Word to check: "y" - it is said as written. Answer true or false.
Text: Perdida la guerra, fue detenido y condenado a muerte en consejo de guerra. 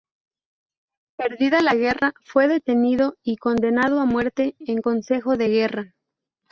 true